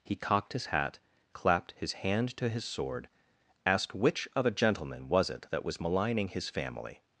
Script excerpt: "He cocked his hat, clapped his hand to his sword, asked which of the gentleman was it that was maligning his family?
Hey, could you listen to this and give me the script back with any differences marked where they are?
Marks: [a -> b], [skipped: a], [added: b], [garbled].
"He cocked his hat, clapped his hand to his sword, asked which of [the -> a] gentleman was it that was maligning his family?